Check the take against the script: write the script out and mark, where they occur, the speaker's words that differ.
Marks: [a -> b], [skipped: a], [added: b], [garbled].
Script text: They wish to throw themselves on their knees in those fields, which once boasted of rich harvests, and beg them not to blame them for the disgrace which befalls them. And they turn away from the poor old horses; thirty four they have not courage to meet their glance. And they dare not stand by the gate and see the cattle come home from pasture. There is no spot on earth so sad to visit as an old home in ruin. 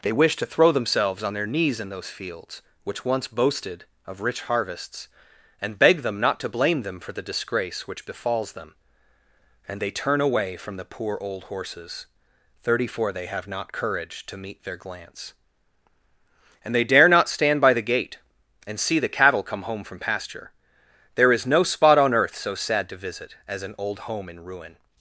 They wish to throw themselves on their knees in those fields, which once boasted of rich harvests, and beg them not to blame them for the disgrace which befalls them. And they turn away from the poor old horses; thirty four they have not courage to meet their glance. And they dare not stand by the gate and see the cattle come home from pasture. There is no spot on earth so sad to visit as an old home in ruin.